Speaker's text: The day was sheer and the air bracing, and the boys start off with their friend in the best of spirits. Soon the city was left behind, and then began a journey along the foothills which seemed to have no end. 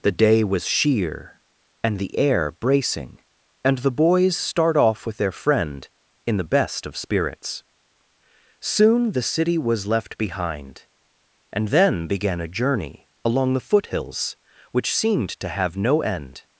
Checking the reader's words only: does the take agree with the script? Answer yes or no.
yes